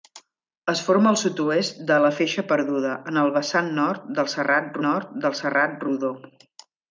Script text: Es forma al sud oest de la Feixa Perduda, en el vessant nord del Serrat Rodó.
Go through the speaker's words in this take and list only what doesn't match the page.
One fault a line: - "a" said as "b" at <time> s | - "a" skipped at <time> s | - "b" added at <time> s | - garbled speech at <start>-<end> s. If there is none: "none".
- "nord del Serrat" added at 4.9 s